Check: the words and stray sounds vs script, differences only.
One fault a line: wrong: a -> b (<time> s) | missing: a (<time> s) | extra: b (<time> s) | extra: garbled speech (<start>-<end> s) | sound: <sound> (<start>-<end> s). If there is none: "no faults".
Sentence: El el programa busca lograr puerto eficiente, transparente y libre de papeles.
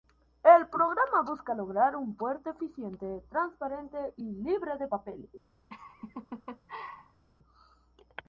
missing: el (0.7 s)
extra: un (1.9 s)
sound: laugh (5.7-7.2 s)